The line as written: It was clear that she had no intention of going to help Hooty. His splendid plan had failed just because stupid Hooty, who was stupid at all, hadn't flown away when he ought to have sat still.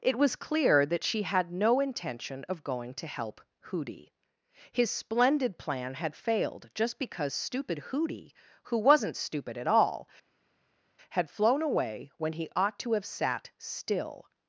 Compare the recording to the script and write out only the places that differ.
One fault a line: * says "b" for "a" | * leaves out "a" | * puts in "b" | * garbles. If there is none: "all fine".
* says "wasn't" for "was"
* says "had" for "hadn't"